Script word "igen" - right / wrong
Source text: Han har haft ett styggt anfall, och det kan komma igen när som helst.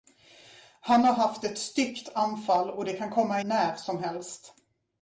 wrong